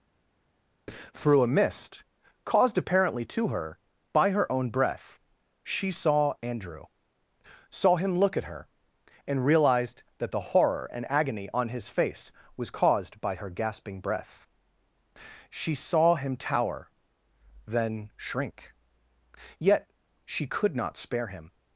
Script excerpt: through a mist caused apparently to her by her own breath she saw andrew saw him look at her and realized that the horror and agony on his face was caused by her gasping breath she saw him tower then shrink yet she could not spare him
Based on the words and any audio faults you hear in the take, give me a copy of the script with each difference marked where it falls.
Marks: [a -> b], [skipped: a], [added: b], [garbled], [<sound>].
through a mist caused apparently to her by her own breath she saw andrew saw him look at her and realized that the horror and agony on his face was caused by her gasping breath she saw him tower then shrink yet she could not spare him